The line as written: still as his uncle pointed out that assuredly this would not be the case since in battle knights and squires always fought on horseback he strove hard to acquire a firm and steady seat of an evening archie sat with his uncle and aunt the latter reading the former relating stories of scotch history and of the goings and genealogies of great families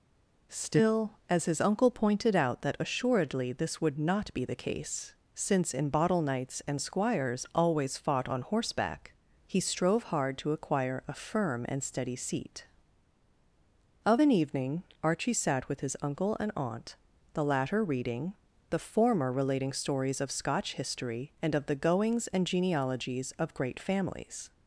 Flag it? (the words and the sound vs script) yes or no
yes